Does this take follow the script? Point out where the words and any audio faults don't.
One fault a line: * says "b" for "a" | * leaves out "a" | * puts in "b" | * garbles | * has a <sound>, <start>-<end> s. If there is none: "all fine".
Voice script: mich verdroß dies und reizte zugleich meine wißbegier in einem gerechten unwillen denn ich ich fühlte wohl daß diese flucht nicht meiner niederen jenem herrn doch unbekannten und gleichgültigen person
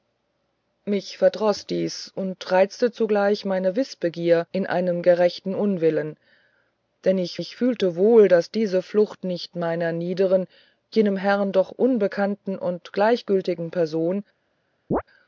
* has a chirp, 14.9-15.0 s